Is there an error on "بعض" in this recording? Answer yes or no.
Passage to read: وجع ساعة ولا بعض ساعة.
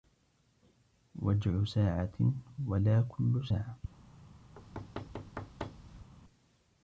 yes